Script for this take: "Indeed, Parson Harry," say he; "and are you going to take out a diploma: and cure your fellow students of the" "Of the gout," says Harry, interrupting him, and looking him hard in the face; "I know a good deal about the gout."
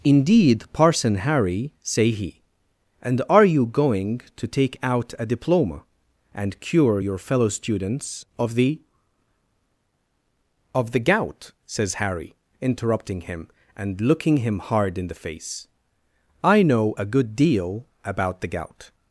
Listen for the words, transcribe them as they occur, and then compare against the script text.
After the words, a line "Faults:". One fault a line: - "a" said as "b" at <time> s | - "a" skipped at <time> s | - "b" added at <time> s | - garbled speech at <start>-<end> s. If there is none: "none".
"Indeed, Parson Harry," say he; "and are you going to take out a diploma: and cure your fellow students of the" "Of the gout," says Harry, interrupting him, and looking him hard in the face; "I know a good deal about the gout."
Faults:
none